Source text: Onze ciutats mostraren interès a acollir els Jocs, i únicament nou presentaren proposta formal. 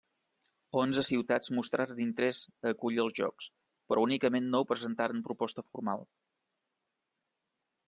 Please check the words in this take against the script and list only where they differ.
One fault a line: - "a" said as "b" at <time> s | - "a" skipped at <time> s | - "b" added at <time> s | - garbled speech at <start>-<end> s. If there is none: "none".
- "i" said as "però" at 3.9 s